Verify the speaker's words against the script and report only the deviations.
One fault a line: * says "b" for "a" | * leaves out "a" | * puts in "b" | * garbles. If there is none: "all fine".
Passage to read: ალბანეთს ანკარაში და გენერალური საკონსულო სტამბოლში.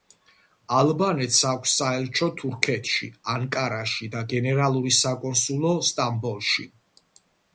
* puts in "აქვს საელჩო თურქეთში"